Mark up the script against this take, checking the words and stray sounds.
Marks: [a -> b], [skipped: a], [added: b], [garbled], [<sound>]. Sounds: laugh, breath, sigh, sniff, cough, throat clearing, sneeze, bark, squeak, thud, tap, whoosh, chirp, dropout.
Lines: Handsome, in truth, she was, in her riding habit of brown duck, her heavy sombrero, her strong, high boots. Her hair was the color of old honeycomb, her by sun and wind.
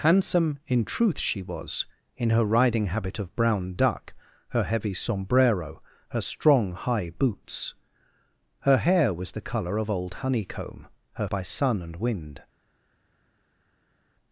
Handsome, in truth, she was, in her riding habit of brown duck, her heavy sombrero, her strong, high boots. Her hair was the color of old honeycomb, her by sun and wind.